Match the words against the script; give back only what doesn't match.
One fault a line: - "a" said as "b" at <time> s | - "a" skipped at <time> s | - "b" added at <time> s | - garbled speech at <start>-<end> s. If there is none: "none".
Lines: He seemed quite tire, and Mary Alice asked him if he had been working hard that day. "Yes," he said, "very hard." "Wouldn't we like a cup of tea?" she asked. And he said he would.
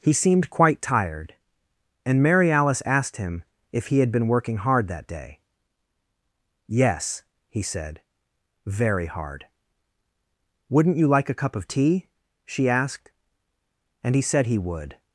- "tire" said as "tired" at 0.8 s
- "we" said as "you" at 11.0 s